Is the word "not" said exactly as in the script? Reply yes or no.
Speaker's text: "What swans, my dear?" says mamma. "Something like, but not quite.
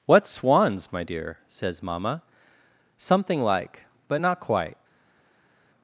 yes